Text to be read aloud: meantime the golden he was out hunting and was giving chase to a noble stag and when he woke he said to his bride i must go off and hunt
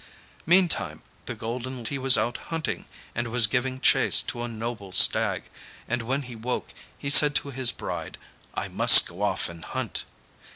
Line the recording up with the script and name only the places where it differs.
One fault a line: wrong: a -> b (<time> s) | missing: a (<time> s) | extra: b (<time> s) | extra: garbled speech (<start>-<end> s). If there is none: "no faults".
no faults